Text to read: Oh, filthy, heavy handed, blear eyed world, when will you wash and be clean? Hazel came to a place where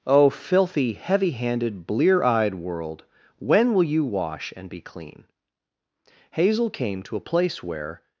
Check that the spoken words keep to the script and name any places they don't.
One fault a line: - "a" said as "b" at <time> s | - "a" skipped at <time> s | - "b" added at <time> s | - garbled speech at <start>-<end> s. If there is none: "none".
none